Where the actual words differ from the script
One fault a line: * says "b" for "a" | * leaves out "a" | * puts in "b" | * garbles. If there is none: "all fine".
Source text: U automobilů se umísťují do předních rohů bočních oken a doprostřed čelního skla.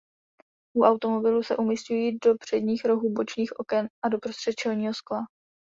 all fine